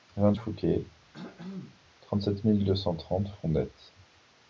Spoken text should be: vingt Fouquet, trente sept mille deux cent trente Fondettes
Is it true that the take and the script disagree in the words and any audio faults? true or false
true